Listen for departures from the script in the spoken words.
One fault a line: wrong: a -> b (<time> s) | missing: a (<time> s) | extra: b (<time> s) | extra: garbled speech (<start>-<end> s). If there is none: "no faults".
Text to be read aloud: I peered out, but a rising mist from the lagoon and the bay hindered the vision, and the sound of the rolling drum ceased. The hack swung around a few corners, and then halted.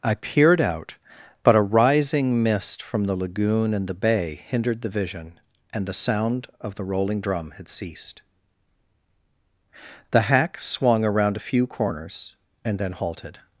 extra: had (7.6 s)